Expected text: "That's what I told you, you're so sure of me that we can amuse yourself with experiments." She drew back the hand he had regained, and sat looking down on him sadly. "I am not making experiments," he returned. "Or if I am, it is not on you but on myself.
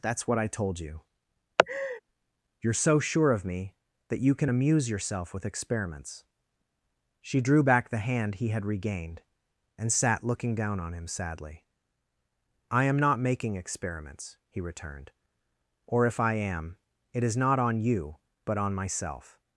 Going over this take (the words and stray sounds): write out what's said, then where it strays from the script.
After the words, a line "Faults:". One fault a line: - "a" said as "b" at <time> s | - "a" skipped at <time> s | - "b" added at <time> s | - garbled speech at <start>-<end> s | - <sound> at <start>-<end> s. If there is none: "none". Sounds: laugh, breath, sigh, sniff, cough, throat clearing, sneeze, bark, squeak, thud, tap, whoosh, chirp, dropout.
"That's what I told you, you're so sure of me that you can amuse yourself with experiments." She drew back the hand he had regained, and sat looking down on him sadly. "I am not making experiments," he returned. "Or if I am, it is not on you but on myself.
Faults:
- laugh at 1.6-2.0 s
- "we" said as "you" at 4.2 s